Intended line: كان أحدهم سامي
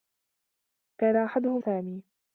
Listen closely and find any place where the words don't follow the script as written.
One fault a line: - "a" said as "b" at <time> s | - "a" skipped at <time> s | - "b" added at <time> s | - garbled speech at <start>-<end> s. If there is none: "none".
none